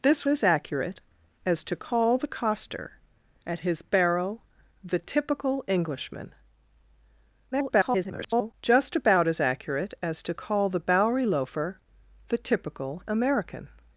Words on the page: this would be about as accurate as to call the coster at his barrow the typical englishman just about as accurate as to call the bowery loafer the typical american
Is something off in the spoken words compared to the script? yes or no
yes